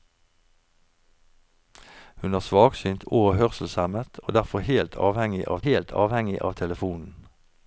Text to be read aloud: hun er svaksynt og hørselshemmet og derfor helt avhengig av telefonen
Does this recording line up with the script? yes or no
no